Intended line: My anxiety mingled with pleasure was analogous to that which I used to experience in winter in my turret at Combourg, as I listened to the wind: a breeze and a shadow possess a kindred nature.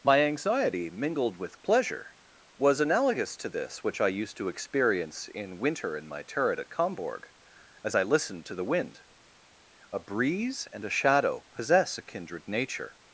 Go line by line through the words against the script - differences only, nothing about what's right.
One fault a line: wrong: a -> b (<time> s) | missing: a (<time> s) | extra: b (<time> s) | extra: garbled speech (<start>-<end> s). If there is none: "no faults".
wrong: that -> this (3.5 s)